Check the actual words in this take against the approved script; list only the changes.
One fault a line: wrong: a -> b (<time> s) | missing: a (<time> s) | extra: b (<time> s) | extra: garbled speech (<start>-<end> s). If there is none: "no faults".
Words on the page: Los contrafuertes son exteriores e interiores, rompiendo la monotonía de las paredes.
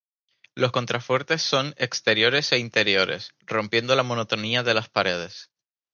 no faults